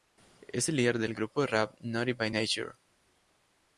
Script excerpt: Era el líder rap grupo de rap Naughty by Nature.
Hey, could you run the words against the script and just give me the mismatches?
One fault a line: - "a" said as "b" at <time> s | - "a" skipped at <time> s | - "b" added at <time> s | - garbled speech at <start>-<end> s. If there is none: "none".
- "Era" said as "Es" at 0.5 s
- "rap" said as "del" at 1.0 s